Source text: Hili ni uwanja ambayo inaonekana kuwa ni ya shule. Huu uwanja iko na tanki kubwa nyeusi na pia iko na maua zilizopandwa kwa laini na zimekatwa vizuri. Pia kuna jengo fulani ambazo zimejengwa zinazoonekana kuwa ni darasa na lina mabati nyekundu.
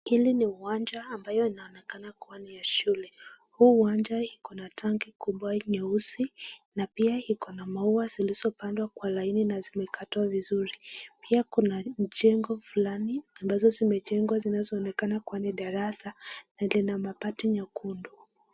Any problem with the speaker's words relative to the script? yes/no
no